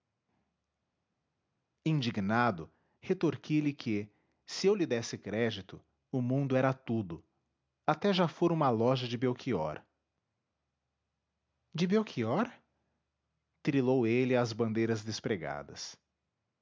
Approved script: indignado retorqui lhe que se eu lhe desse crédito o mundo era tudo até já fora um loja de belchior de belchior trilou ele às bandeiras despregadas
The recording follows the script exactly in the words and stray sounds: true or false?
false